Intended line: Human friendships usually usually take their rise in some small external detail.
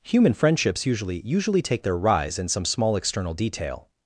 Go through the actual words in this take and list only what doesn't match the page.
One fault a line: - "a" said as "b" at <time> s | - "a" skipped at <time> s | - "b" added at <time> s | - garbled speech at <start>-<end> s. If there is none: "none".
none